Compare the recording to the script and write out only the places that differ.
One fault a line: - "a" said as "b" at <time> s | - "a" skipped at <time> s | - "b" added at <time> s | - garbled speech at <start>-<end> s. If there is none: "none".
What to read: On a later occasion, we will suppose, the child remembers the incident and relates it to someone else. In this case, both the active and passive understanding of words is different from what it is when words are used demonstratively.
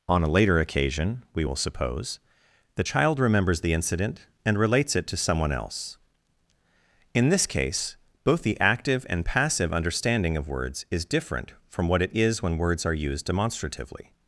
none